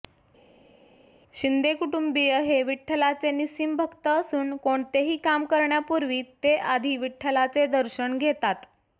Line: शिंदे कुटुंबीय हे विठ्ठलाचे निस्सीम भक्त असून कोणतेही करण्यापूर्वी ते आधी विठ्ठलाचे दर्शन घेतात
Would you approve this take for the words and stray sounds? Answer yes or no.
no